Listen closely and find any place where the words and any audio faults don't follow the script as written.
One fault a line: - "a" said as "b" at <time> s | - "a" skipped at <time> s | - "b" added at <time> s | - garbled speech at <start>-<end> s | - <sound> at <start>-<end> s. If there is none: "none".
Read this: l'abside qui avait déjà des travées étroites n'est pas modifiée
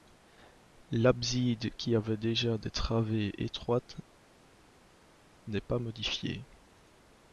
none